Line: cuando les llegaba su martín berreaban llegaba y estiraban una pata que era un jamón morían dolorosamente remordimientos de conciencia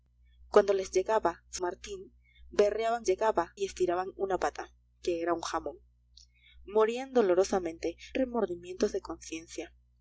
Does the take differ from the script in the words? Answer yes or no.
no